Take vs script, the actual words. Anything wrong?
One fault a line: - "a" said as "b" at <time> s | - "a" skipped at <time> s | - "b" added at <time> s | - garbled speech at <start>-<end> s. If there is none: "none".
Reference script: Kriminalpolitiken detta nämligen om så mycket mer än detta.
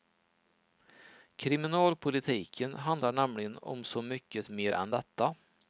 - "detta" said as "handlar" at 2.7 s